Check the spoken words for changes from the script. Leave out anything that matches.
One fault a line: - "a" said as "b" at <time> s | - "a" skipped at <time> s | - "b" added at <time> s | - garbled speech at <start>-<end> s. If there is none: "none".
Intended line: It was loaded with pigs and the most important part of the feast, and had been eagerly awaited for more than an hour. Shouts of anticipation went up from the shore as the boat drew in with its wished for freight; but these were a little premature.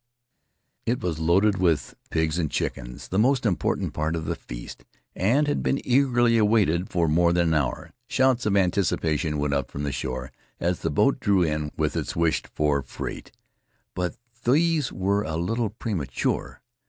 - "chickens" added at 2.5 s